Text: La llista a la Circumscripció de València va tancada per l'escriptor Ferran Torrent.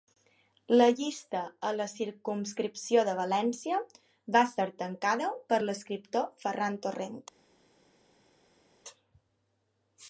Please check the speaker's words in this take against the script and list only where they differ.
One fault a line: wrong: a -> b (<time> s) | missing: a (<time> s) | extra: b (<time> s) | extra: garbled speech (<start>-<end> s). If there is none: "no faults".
extra: ser (4.5 s)